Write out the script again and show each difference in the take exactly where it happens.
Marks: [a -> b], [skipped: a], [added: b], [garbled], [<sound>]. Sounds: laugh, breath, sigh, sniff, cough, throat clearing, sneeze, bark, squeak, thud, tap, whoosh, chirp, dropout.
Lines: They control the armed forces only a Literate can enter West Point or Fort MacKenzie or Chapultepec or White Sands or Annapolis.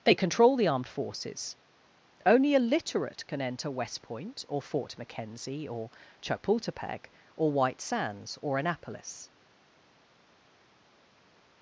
They control the armed forces only a Literate can enter West Point or Fort MacKenzie or Chapultepec or White Sands or Annapolis.